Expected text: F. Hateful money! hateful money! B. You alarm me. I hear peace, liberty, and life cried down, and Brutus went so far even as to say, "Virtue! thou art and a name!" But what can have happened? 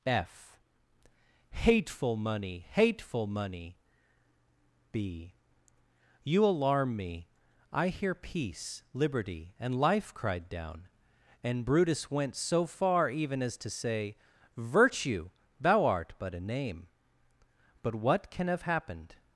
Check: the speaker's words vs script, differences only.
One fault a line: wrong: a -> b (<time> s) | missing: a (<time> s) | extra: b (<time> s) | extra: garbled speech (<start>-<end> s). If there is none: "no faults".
wrong: and -> but (16.2 s)